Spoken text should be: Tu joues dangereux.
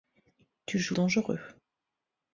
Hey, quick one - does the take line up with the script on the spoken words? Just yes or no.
yes